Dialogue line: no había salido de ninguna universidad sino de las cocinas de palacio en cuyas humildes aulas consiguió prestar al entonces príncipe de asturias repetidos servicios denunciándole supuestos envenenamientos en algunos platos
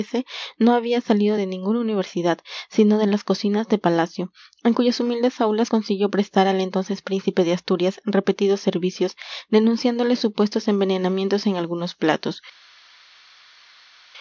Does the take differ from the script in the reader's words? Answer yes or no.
no